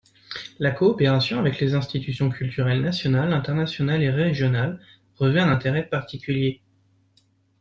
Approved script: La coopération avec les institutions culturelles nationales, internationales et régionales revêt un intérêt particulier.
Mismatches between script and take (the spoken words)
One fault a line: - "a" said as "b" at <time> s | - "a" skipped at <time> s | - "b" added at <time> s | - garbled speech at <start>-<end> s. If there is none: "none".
none